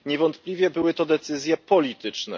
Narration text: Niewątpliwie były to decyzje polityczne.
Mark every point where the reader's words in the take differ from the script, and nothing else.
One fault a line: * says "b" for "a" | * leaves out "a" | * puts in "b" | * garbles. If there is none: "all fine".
all fine